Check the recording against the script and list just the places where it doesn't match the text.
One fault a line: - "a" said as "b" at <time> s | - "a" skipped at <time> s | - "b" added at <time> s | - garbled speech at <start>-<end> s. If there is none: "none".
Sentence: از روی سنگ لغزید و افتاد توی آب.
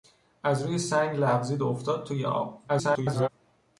- garbled speech at 2.7-3.3 s